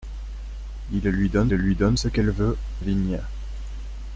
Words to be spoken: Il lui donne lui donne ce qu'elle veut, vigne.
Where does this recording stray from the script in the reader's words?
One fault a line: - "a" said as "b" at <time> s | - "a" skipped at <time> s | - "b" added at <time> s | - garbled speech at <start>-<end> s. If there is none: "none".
none